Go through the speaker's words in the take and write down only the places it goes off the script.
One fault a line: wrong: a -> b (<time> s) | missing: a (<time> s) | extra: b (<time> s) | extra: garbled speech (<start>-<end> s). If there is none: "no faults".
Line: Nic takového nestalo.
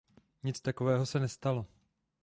extra: se (1.1 s)